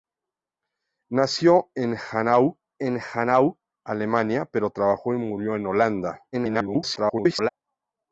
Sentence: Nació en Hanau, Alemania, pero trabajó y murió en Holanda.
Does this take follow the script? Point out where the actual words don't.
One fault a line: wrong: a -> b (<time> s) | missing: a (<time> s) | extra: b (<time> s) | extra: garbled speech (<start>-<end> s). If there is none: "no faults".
extra: en Hanau (2.8 s)
extra: garbled speech (6.3-7.5 s)